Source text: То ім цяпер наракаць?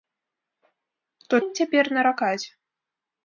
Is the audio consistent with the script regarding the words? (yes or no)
yes